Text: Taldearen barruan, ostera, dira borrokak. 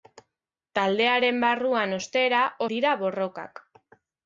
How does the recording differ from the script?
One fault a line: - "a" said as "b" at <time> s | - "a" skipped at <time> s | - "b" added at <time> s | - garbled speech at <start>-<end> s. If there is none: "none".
none